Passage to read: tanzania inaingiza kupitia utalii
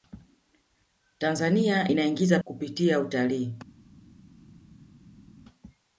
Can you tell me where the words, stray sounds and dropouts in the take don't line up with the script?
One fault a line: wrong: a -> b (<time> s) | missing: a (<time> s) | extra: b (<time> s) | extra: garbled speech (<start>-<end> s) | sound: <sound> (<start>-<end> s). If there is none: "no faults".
no faults